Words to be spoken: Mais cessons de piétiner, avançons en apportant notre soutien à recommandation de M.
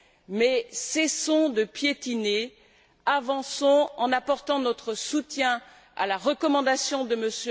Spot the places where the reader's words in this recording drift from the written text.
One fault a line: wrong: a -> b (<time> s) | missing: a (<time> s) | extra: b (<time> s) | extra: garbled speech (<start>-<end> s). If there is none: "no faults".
extra: la (6.1 s)